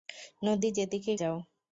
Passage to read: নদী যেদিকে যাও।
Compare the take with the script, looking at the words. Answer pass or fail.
pass